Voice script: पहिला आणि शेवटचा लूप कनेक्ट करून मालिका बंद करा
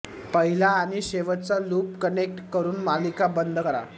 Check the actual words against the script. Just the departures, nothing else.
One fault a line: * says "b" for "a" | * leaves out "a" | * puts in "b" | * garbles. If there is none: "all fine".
all fine